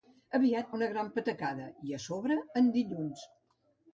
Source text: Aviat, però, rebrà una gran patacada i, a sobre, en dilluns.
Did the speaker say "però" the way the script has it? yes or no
no